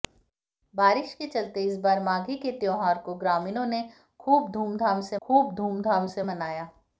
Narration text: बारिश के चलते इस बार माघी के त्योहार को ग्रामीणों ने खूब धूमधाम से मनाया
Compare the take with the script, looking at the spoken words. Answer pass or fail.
fail